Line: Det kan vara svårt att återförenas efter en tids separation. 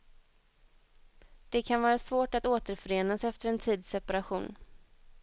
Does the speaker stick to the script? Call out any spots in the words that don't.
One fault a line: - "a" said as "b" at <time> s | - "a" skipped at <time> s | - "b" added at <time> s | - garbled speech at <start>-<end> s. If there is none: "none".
none